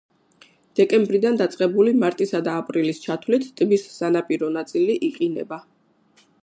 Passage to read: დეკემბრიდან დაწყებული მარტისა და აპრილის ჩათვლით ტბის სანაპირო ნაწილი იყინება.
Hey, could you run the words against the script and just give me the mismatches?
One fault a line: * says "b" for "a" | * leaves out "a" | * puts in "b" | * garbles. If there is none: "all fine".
all fine